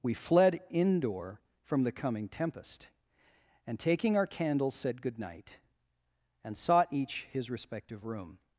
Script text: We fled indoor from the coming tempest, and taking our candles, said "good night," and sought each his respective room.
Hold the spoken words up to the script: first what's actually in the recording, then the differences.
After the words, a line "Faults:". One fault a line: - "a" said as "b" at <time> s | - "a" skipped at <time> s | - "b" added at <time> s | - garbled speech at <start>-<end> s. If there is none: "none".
We fled indoor from the coming tempest, and taking our candles, said "good night," and sought each his respective room.
Faults:
none